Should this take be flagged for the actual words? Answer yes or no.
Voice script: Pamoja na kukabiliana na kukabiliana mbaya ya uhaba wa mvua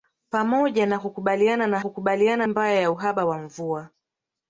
no